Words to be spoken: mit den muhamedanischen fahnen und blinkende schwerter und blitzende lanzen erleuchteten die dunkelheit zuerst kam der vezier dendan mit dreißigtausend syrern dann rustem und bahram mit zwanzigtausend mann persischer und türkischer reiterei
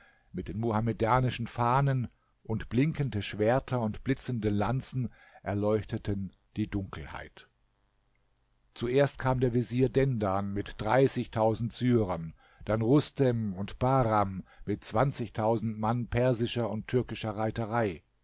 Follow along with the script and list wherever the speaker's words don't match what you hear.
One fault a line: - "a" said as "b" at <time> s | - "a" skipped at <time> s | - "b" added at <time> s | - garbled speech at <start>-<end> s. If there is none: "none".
none